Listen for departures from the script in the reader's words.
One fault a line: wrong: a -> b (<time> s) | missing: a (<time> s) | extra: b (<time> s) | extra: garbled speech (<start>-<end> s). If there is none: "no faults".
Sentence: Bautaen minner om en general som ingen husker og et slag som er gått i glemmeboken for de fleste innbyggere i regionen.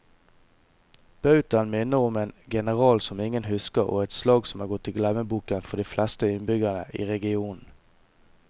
no faults